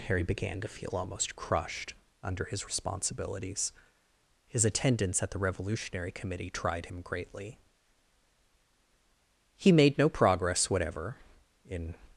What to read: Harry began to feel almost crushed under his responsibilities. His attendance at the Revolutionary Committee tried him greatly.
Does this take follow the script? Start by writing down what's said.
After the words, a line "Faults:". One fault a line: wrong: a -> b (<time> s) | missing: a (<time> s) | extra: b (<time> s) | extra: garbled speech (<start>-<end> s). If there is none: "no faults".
Harry began to feel almost crushed under his responsibilities. His attendance at the Revolutionary Committee tried him greatly. He made no progress whatever in
Faults:
extra: He made no progress whatever in (9.6 s)